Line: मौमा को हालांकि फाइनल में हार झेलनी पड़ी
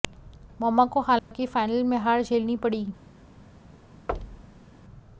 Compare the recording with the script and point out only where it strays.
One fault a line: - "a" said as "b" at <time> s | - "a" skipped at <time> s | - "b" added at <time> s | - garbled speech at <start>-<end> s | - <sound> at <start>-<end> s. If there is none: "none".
- dropout at 1.2-1.3 s
- thud at 4.1-4.7 s